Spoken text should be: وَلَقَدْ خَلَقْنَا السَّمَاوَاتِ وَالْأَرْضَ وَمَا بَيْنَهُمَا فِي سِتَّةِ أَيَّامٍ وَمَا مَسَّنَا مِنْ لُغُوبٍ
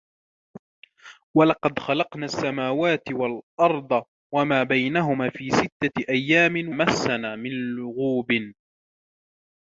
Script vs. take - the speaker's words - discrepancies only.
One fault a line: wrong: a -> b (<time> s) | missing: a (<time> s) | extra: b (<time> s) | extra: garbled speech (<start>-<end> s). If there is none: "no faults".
missing: وَمَا (6.8 s)